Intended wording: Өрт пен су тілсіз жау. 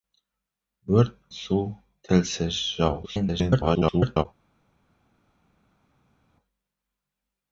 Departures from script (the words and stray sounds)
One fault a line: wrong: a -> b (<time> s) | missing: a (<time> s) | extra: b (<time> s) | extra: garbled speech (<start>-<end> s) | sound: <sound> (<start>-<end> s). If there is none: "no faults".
missing: пен (1.2 s)
extra: garbled speech (3.0-4.3 s)